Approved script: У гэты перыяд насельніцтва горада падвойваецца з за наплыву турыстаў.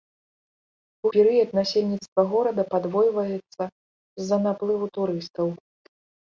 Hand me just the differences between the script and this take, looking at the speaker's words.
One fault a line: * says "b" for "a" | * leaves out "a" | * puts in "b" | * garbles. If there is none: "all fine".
* leaves out "гэты"